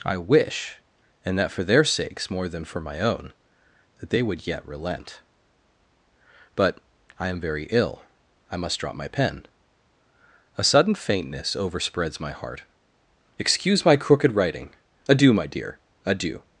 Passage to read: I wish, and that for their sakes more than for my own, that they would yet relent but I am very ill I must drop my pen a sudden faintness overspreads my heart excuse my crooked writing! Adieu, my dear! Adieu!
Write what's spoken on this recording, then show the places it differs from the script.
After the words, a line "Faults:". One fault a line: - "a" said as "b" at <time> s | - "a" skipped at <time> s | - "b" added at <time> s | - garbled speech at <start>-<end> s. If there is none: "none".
I wish, and that for their sakes more than for my own, that they would yet relent but I am very ill I must drop my pen a sudden faintness overspreads my heart excuse my crooked writing! Adieu, my dear! Adieu!
Faults:
none